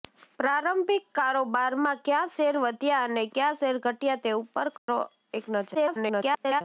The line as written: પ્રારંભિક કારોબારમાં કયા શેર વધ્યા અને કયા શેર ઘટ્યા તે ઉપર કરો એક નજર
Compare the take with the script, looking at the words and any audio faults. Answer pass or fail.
fail